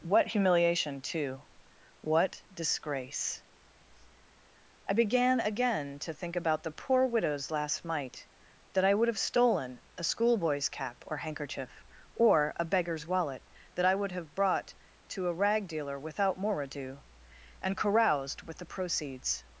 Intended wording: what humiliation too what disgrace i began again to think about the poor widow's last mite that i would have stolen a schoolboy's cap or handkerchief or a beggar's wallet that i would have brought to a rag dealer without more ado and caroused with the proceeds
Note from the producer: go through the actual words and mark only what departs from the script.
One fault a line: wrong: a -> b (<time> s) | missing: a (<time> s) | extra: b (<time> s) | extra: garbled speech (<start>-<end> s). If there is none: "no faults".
no faults